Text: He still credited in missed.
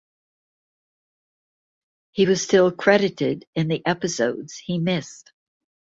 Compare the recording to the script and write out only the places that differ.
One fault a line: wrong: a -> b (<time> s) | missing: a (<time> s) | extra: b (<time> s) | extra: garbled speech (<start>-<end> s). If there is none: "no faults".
extra: was (2.2 s)
extra: the episodes he (3.7 s)